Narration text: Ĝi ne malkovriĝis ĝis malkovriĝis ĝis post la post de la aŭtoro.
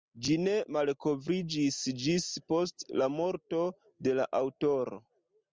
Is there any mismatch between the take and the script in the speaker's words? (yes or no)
yes